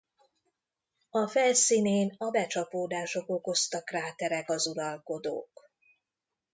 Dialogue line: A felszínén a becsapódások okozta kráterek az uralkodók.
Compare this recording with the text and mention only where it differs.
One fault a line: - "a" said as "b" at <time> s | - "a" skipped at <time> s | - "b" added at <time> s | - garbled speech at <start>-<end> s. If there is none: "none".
none